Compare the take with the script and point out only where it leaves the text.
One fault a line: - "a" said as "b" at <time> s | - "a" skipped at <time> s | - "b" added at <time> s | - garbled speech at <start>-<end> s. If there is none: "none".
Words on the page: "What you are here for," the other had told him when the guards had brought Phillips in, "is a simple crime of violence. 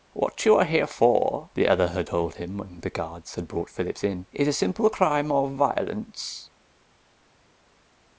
none